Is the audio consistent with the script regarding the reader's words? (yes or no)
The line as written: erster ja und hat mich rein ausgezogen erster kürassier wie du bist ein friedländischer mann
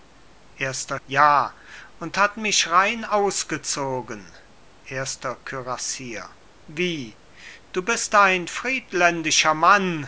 yes